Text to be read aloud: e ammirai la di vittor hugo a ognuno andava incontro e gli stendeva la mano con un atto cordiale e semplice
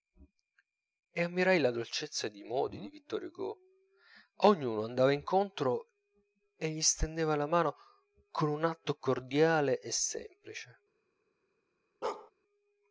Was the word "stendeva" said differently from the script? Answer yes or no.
no